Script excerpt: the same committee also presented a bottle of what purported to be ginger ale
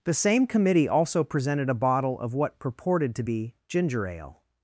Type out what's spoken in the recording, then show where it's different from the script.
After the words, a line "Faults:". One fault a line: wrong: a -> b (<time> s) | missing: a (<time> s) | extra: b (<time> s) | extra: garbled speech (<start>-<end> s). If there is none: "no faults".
the same committee also presented a bottle of what purported to be ginger ale
Faults:
no faults